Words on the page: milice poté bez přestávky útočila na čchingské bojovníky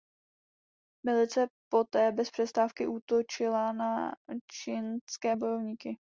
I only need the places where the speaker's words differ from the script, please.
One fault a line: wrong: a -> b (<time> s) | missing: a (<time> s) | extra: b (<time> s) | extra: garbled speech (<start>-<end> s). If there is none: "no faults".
no faults